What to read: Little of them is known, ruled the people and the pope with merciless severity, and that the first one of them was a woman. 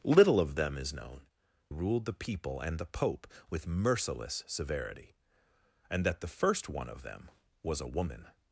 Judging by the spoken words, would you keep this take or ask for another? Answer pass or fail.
pass